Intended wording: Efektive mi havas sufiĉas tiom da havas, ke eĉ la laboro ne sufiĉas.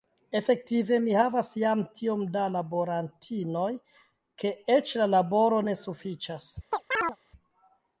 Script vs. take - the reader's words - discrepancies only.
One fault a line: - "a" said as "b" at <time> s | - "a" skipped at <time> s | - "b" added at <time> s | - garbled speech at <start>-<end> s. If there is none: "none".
- "sufiĉas" said as "jam" at 1.6 s
- "havas" said as "laborantinoj" at 2.5 s